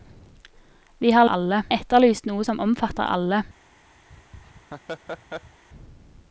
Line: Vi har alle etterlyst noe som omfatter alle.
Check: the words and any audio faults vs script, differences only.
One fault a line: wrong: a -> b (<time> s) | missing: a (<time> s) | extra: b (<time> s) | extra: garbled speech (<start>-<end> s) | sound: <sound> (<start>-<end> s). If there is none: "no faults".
sound: laugh (4.1-5.6 s)